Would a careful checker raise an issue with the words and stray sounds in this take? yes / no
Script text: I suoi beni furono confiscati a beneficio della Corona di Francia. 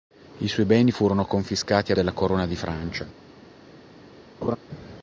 yes